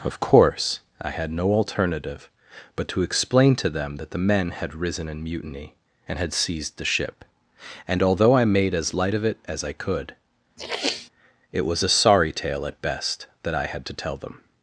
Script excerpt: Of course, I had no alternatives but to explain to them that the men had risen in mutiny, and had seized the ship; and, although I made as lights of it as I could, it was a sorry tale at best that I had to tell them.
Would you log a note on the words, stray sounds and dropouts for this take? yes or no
yes